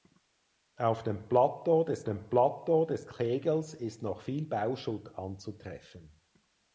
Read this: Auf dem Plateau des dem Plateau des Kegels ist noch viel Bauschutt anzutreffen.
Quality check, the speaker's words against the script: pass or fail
pass